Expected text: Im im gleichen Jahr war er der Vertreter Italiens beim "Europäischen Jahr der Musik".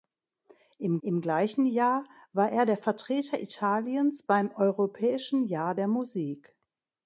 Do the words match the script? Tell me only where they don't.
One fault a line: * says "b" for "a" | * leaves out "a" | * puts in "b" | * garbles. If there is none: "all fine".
all fine